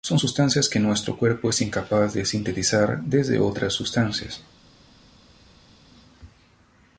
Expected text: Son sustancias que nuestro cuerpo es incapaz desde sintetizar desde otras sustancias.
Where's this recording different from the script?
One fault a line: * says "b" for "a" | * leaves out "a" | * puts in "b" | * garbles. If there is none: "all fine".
* says "de" for "desde"